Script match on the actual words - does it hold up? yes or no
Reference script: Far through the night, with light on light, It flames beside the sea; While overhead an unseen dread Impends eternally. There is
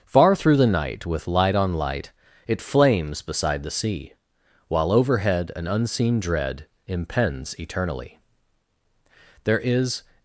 yes